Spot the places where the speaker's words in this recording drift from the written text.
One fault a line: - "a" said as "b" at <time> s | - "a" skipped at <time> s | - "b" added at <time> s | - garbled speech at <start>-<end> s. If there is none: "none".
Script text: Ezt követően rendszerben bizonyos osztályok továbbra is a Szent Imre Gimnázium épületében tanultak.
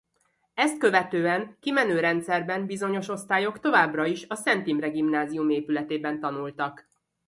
- "kimenő" added at 1.6 s